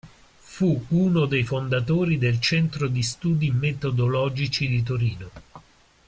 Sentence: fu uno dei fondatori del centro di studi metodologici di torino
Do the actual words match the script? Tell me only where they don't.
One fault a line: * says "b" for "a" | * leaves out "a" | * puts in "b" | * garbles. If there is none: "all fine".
all fine